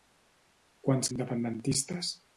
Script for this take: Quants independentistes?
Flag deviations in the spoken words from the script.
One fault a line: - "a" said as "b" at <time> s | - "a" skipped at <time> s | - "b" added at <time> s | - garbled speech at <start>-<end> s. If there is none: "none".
none